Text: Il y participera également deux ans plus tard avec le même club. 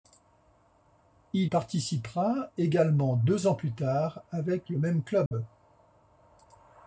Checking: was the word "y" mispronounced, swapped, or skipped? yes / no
yes